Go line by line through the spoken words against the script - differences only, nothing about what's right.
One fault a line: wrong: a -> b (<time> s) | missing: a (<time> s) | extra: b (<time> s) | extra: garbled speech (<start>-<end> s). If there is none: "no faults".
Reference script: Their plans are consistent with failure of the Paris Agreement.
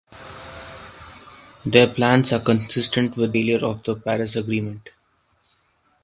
no faults